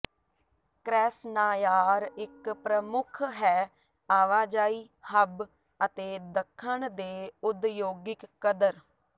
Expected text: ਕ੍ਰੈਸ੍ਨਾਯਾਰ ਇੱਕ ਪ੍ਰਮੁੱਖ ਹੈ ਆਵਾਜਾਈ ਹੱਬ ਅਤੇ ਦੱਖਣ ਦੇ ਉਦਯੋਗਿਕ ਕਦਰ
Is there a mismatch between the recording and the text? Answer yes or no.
no